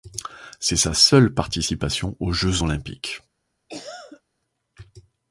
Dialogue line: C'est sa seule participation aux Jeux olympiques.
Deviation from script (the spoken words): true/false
false